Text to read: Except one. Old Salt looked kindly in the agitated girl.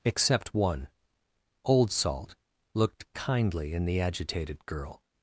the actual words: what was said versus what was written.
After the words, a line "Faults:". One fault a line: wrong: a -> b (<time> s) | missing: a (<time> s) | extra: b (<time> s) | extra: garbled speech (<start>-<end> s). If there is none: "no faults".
Except one. Old Salt looked kindly in the agitated girl.
Faults:
no faults